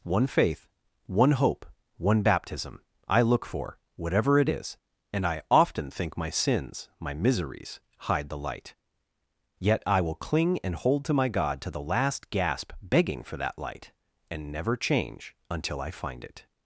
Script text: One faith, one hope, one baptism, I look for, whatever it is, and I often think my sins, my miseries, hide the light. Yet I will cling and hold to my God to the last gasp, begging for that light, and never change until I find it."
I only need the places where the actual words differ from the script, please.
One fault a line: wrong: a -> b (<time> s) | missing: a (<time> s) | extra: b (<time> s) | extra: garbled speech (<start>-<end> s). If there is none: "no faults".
no faults